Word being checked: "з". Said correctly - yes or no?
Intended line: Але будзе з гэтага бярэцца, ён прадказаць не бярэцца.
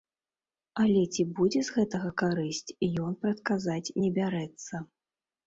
yes